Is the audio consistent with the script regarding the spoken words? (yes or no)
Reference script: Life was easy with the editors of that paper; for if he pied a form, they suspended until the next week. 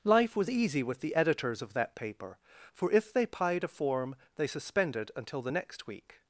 no